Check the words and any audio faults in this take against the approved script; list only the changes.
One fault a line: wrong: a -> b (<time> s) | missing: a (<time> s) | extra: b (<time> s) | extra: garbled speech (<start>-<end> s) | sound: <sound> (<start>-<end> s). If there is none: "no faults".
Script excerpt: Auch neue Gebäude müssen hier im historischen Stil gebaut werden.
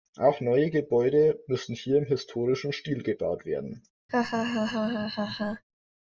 sound: laugh (4.1-5.6 s)